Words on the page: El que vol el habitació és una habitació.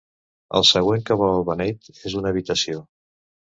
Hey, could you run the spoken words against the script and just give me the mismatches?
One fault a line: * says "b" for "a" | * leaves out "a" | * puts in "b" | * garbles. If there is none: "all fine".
* puts in "següent"
* says "beneit" for "habitació"